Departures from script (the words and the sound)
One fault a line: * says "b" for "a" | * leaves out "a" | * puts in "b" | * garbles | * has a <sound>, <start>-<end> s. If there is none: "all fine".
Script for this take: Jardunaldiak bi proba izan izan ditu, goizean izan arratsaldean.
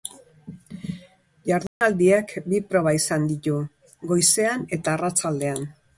* has a dropout, 1.7-1.8 s
* leaves out "izan"
* says "eta" for "izan"